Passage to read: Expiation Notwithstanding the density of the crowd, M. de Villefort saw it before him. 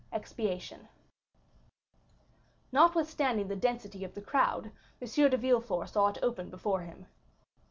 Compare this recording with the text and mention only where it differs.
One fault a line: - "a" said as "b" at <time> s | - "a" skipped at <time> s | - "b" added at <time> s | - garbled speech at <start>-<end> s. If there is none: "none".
- "open" added at 6.2 s